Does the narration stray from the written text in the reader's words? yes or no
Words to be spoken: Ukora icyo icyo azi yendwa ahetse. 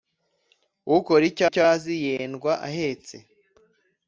no